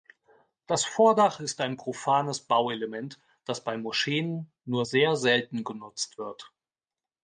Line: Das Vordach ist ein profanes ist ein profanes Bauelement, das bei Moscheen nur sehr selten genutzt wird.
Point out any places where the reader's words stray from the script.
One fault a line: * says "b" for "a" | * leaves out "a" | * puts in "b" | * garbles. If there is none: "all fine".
* leaves out "ist ein profanes"